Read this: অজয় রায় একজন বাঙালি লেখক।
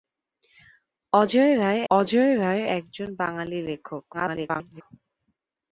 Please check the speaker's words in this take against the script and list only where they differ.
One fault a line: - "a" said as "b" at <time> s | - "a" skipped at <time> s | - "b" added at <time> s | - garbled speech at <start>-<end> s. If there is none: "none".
- "অজয় রায়" added at 1.9 s
- garbled speech at 4.1-4.8 s